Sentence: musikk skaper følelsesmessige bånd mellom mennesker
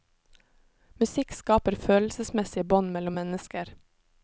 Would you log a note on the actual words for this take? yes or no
no